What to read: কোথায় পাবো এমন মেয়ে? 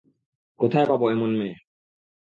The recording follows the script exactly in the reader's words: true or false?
true